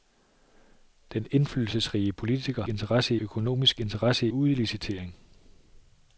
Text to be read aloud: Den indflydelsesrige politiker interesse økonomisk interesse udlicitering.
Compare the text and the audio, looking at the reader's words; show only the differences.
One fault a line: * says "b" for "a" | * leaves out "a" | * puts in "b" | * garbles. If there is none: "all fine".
all fine